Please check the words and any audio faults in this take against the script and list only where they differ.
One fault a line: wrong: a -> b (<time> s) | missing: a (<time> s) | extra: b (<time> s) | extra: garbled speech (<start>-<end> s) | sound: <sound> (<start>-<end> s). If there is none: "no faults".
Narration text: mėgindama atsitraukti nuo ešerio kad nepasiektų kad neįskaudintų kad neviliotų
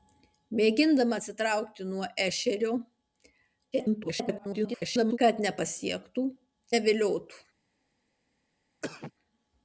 extra: garbled speech (3.7-5.2 s)
missing: kad neįskaudintų kad (6.3 s)
sound: cough (8.8-9.1 s)